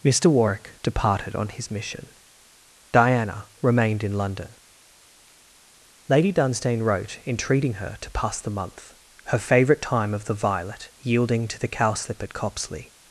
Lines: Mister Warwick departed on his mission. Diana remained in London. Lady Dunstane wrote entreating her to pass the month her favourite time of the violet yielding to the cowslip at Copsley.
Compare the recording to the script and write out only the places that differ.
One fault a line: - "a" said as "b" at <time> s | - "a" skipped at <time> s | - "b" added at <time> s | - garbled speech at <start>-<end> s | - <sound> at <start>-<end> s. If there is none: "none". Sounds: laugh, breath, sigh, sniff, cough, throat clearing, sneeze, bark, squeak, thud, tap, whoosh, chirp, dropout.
none